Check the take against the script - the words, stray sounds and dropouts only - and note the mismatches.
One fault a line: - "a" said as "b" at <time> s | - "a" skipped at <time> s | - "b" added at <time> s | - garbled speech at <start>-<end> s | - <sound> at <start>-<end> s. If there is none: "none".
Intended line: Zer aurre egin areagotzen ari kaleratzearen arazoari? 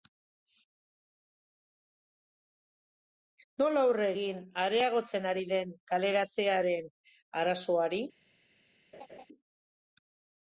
- "Zer" said as "Nola" at 3.6 s
- "den" added at 5.6 s
- laugh at 8.9-9.3 s